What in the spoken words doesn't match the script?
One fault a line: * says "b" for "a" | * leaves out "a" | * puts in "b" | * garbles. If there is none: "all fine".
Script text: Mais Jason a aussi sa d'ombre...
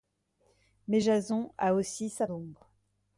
all fine